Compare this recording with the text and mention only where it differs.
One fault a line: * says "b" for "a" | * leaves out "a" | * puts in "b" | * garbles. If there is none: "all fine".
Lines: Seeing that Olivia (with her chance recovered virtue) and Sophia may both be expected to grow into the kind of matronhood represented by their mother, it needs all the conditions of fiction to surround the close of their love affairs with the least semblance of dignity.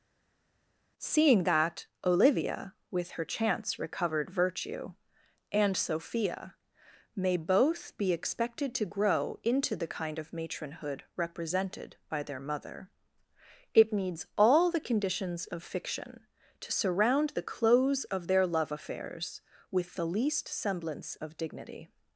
all fine